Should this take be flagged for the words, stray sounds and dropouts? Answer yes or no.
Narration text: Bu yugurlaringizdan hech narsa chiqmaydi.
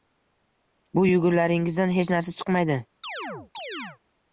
yes